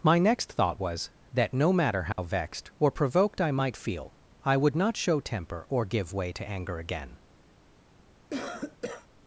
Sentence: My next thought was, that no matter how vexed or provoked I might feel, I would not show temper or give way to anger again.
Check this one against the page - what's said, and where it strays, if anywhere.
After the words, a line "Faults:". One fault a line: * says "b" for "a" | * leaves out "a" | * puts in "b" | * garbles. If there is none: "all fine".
My next thought was, that no matter how vexed or provoked I might feel, I would not show temper or give way to anger again.
Faults:
all fine